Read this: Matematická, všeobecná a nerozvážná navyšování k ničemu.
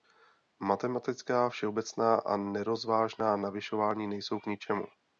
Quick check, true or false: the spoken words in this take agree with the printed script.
false